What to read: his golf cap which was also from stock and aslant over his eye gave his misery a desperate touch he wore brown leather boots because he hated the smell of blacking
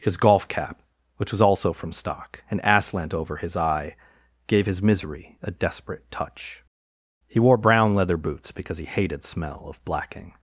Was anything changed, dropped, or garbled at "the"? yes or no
yes